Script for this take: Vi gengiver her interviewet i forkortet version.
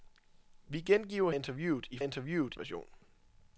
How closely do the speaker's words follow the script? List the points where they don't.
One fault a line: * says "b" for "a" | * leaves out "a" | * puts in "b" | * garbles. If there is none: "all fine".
* leaves out "her"
* says "interviewet" for "forkortet"